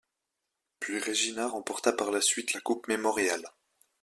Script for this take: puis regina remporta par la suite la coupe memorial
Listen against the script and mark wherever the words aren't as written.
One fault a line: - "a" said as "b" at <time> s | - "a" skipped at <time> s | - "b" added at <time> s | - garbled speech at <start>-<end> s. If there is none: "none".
none